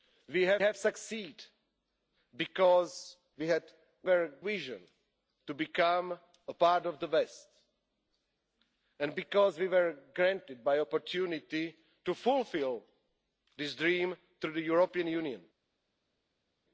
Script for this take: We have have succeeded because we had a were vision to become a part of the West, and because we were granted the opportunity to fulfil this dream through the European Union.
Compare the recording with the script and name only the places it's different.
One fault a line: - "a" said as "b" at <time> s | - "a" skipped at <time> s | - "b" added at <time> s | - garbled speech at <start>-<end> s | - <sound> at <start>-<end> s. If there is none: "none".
none